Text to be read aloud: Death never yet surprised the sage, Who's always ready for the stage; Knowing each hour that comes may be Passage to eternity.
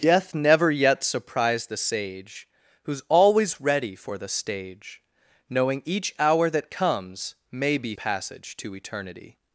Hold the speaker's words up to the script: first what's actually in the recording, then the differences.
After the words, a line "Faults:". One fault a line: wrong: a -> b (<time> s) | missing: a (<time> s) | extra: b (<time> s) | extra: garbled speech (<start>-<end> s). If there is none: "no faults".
Death never yet surprised the sage, Who's always ready for the stage; Knowing each hour that comes may be Passage to eternity.
Faults:
no faults